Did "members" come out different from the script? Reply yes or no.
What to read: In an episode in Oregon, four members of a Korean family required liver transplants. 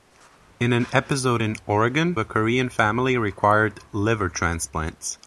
yes